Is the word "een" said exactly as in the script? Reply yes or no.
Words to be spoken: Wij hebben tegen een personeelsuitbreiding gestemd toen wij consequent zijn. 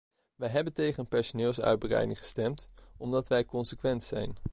yes